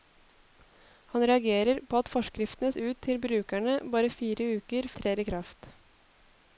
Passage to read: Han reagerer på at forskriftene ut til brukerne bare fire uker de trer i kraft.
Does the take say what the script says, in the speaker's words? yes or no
yes